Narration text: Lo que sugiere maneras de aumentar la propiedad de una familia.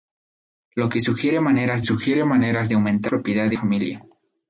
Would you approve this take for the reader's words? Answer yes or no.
no